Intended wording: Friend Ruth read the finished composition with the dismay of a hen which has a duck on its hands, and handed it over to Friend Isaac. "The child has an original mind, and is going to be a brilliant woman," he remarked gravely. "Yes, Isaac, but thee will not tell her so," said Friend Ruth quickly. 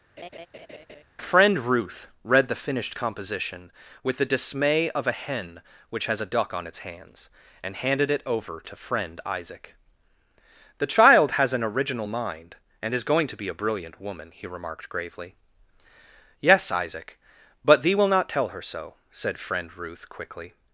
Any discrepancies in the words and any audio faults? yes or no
yes